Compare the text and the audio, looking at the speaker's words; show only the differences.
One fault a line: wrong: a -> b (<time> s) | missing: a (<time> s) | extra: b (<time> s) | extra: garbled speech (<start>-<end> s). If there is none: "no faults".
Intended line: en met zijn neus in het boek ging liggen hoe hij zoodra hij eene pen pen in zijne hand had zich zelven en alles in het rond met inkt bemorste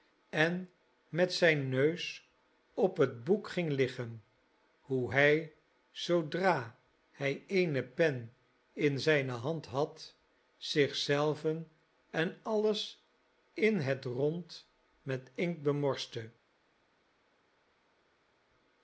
wrong: in -> op (2.7 s)
missing: pen (8.3 s)